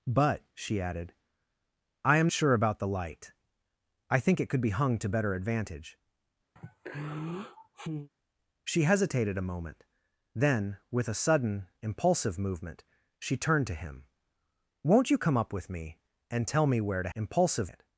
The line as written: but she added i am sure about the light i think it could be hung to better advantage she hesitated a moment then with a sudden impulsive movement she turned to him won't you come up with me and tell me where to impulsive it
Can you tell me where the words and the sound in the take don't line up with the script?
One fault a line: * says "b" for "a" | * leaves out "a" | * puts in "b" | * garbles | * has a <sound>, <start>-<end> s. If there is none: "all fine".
* has a sigh, 6.6-8.1 s